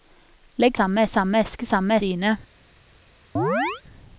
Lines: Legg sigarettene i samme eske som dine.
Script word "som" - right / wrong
wrong